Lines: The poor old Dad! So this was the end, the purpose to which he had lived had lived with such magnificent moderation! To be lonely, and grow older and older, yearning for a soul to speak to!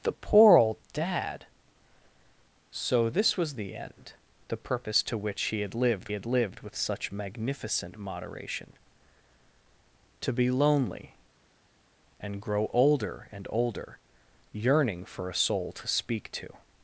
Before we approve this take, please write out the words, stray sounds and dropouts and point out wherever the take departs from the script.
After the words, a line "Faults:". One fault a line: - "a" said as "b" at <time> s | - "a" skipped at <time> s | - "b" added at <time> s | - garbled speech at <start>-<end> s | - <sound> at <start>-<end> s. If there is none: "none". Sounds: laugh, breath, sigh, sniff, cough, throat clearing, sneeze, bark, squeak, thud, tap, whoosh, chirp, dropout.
The poor old Dad! So this was the end, the purpose to which he had lived had lived with such magnificent moderation! To be lonely, and grow older and older, yearning for a soul to speak to!
Faults:
none